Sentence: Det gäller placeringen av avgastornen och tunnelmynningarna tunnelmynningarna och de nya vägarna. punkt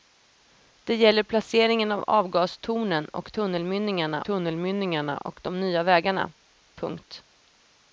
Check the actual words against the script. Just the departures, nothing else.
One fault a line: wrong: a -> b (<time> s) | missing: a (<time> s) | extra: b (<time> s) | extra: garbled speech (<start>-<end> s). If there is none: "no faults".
no faults